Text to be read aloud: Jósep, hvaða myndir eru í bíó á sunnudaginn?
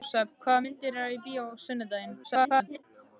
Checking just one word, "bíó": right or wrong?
right